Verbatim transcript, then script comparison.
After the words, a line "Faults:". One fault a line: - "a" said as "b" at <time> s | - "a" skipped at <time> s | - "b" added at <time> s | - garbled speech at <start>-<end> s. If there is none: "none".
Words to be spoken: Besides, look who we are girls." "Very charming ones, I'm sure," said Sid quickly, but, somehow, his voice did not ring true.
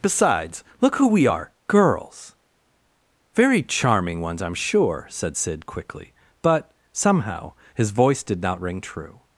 Besides, look who we are girls." "Very charming ones, I'm sure," said Sid quickly, but, somehow, his voice did not ring true.
Faults:
none